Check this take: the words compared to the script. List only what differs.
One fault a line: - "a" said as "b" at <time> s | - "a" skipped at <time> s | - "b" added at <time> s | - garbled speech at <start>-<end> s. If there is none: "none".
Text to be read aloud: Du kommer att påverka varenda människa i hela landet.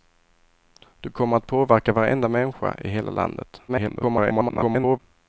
- garbled speech at 3.7-5.0 s